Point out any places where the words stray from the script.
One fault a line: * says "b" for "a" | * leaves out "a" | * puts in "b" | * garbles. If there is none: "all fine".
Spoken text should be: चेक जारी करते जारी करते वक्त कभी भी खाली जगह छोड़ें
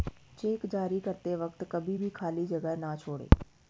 * leaves out "जारी करते"
* puts in "न"